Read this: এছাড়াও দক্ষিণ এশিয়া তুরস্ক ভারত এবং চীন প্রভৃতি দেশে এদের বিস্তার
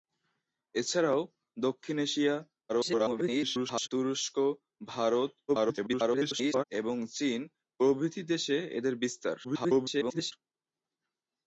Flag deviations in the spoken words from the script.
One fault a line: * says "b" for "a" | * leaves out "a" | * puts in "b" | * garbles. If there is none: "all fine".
* garbles
* garbles
* garbles